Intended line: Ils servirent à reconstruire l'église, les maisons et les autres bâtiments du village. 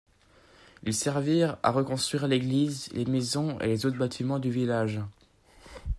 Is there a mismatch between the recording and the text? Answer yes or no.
no